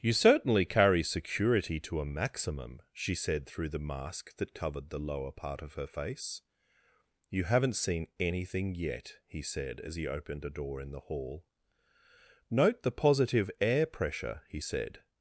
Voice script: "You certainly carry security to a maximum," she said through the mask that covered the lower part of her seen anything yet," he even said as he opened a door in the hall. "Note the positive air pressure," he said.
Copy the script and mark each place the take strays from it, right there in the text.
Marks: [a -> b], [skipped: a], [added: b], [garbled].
"You certainly carry security to a maximum," she said through the mask that covered the lower part of her [added: face You haven't] seen anything yet," he [skipped: even] said as he opened a door in the hall. "Note the positive air pressure," he said.